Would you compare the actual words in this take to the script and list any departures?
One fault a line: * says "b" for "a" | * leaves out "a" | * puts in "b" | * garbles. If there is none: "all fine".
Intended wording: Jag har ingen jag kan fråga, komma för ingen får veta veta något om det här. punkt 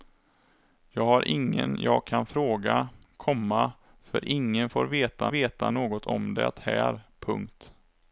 all fine